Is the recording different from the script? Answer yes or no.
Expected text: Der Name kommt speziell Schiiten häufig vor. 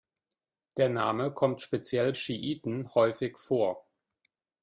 no